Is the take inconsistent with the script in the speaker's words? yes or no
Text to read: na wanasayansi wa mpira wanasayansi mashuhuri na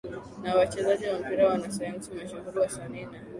yes